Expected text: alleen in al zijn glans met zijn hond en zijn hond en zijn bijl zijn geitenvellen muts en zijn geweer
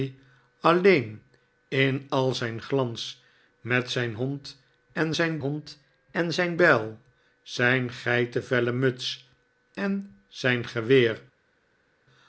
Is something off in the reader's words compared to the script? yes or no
no